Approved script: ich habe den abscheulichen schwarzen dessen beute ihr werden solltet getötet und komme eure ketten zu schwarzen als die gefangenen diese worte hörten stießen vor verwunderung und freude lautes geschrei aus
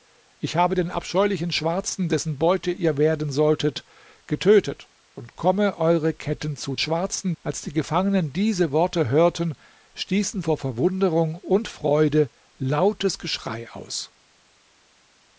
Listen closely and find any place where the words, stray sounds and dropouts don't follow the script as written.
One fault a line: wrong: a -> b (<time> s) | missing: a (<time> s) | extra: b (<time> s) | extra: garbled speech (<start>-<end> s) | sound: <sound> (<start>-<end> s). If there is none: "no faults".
no faults